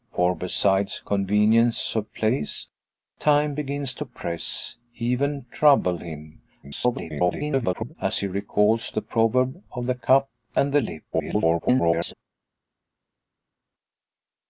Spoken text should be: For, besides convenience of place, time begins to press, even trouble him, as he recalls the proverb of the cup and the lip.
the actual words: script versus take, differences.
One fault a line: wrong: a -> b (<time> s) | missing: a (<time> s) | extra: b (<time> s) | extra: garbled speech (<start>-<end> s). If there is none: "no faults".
extra: garbled speech (6.6-8.0 s)
extra: garbled speech (11.1-12.1 s)